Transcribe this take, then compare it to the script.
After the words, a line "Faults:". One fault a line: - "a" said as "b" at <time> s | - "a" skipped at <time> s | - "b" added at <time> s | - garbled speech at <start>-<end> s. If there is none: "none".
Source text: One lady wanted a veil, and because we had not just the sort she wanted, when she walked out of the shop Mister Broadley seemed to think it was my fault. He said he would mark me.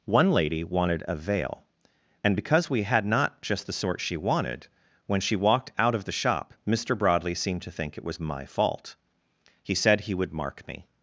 One lady wanted a veil, and because we had not just the sort she wanted, when she walked out of the shop Mister Broadley seemed to think it was my fault. He said he would mark me.
Faults:
none